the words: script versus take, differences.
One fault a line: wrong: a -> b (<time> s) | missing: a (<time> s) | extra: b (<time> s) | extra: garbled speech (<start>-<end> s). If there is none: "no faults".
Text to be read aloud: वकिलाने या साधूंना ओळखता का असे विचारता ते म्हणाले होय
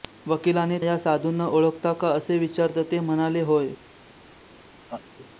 no faults